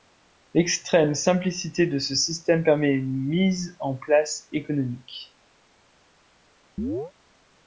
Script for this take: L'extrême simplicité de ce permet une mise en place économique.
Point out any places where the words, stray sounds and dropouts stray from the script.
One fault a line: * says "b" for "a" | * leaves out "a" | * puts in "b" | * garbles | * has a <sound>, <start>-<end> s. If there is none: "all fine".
* puts in "système"
* has a chirp, 6.8-7.1 s